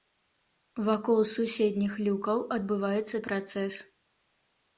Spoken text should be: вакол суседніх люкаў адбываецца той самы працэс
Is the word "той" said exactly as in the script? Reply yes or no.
no